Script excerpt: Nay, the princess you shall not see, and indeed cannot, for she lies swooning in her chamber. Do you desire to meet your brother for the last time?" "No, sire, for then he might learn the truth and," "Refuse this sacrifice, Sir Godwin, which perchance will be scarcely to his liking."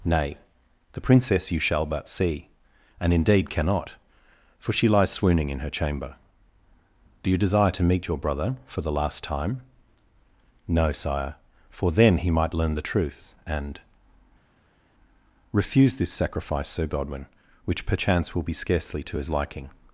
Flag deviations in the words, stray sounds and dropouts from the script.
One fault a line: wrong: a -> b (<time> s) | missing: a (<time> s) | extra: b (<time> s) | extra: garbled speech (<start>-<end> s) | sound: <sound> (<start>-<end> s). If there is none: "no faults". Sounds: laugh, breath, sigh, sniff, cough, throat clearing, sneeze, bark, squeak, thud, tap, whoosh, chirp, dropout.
wrong: not -> but (1.8 s)